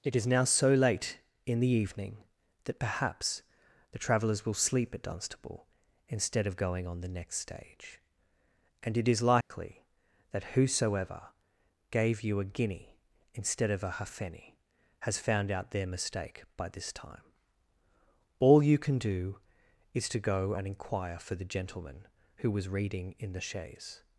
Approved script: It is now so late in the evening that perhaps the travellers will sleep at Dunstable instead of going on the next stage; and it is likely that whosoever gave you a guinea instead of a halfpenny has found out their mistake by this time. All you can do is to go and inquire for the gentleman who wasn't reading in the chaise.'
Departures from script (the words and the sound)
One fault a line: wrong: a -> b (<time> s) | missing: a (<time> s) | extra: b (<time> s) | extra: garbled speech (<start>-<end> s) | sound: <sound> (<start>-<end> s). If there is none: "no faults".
sound: dropout (9.4-9.5 s)
wrong: wasn't -> was (22.5 s)